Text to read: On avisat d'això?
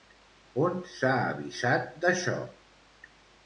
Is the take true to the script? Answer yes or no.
no